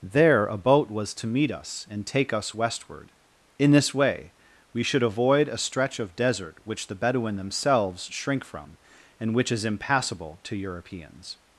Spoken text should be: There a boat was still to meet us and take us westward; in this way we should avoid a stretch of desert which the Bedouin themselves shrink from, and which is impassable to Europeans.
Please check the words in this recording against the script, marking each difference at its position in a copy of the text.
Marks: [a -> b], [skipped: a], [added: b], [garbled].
There a boat was [skipped: still] to meet us and take us westward; in this way we should avoid a stretch of desert which the Bedouin themselves shrink from, and which is impassable to Europeans.